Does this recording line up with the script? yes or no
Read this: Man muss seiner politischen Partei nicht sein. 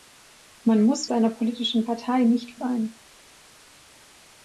yes